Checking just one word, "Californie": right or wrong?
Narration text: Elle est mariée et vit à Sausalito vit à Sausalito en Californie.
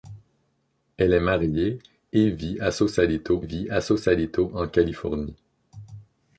right